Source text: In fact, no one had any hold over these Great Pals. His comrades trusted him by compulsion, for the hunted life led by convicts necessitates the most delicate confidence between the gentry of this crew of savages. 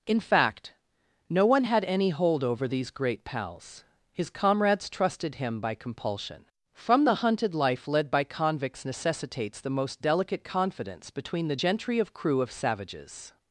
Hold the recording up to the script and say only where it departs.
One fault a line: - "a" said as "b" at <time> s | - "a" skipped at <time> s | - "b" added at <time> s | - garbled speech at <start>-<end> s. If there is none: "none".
- "for" said as "from" at 6.7 s
- "this" skipped at 12.1 s